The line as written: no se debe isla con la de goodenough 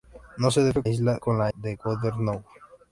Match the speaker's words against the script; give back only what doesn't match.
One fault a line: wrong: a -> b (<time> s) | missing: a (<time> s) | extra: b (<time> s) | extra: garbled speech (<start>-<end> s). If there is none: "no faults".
no faults